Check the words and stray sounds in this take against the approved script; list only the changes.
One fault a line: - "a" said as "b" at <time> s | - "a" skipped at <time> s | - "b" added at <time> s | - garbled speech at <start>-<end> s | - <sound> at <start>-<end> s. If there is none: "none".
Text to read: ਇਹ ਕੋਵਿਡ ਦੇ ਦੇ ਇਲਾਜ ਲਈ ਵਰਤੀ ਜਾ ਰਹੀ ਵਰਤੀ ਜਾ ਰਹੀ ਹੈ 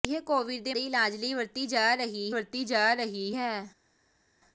none